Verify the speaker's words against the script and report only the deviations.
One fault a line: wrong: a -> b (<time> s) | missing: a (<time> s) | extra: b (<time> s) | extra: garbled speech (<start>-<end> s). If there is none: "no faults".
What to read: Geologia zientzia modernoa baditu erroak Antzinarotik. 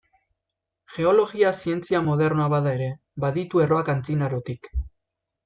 extra: bada ere (2.6 s)